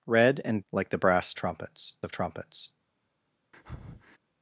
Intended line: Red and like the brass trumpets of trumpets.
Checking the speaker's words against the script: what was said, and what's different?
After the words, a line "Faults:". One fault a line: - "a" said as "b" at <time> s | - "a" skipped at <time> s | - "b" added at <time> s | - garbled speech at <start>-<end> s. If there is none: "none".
Red and like the brass trumpets of trumpets.
Faults:
none